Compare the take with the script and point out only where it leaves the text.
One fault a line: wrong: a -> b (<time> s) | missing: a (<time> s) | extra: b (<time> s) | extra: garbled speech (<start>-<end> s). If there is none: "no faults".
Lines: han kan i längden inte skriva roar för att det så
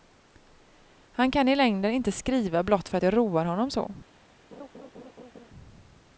wrong: roar -> blott (2.6 s)
extra: roar honom (3.1 s)